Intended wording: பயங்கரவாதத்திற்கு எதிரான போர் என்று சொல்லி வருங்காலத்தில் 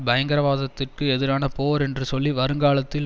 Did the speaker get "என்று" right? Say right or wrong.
right